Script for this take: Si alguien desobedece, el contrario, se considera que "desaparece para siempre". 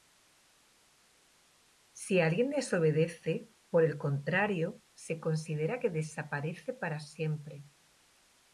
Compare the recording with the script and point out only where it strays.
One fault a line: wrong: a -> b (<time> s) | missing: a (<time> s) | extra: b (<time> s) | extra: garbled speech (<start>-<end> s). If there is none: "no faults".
extra: por (3.7 s)